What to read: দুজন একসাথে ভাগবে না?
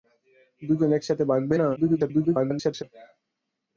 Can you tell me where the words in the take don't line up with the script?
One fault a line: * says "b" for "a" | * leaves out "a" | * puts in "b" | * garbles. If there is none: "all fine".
* garbles